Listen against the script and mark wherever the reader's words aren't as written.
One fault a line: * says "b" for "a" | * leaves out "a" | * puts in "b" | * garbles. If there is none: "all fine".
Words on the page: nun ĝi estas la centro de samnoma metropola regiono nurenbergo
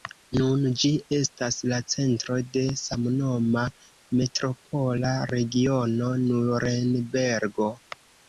all fine